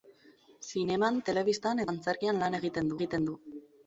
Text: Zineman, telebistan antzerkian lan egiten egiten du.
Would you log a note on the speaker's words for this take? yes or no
no